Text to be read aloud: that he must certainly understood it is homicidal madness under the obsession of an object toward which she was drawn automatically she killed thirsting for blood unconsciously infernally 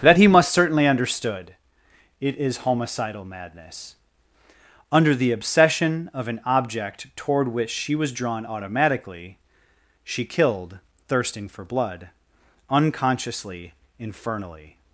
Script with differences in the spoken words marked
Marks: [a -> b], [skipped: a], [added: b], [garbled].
that he must certainly understood it is homicidal madness under the obsession of an object toward which she was drawn automatically she killed thirsting for blood unconsciously infernally